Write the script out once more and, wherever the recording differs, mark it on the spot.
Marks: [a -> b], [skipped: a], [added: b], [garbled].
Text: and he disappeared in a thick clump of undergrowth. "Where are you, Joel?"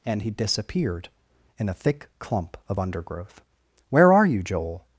and he disappeared in a thick clump of undergrowth. "Where are you, Joel?"